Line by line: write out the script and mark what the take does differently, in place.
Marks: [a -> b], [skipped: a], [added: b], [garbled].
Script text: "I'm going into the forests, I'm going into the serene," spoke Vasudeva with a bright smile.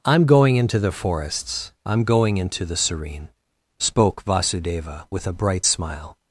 "I'm going into the forests, I'm going into the serene," spoke Vasudeva with a bright smile.